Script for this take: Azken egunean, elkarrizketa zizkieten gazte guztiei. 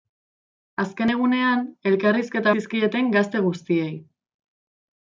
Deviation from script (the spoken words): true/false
false